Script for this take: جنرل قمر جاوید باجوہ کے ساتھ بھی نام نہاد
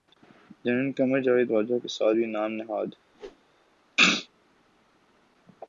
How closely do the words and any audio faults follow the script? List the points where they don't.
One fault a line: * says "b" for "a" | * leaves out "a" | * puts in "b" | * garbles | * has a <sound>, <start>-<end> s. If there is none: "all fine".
* has a whoosh, 3.1-3.4 s